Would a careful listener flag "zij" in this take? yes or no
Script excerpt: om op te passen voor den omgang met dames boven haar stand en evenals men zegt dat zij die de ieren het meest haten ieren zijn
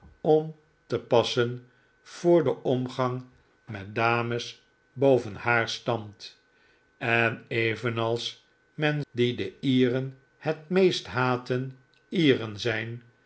yes